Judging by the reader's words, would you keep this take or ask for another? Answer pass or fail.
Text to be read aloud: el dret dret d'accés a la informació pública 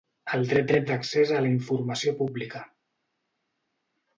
pass